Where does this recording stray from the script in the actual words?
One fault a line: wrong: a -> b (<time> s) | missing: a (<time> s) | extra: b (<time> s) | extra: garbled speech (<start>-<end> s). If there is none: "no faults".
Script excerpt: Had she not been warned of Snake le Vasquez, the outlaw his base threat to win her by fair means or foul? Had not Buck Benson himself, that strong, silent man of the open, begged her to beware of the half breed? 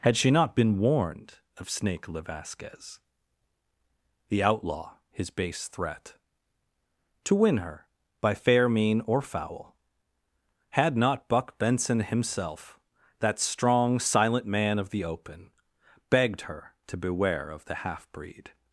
wrong: means -> mean (8.7 s)